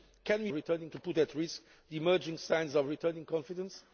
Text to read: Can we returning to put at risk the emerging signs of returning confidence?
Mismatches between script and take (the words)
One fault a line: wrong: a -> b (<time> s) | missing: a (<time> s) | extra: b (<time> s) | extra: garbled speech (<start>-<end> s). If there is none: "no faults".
no faults